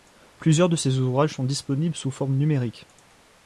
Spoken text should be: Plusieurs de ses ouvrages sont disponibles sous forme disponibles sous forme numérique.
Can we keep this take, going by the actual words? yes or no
no